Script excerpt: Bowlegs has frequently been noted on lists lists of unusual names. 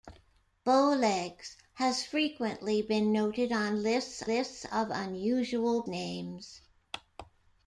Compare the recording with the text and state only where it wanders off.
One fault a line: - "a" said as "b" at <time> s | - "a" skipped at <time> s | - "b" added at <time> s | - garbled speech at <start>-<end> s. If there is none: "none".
none